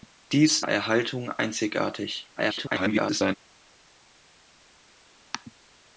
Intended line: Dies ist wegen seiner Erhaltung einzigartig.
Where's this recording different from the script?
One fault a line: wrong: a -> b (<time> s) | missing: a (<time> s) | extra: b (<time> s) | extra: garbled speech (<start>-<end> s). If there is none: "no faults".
missing: ist wegen seiner (0.6 s)
extra: garbled speech (2.4-3.4 s)